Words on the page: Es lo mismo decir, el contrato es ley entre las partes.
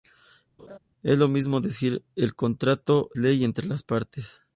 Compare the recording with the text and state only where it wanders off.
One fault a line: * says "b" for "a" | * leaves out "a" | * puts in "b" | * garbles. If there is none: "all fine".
* leaves out "es"